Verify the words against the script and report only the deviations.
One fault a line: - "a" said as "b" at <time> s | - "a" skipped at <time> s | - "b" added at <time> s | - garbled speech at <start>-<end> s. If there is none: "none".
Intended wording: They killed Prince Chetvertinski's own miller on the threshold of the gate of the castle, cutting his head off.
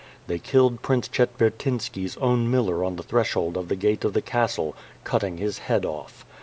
none